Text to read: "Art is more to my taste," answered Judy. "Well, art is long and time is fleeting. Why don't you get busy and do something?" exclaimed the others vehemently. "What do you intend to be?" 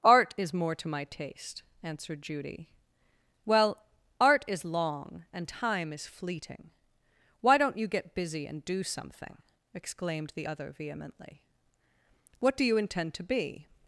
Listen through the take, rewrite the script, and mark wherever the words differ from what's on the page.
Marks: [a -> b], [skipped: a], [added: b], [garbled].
"Art is more to my taste," answered Judy. "Well, art is long and time is fleeting. Why don't you get busy and do something?" exclaimed the [others -> other] vehemently. "What do you intend to be?"